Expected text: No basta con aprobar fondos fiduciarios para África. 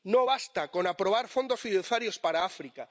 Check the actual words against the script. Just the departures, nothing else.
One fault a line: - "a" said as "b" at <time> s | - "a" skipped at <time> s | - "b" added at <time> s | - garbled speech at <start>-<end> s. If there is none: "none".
none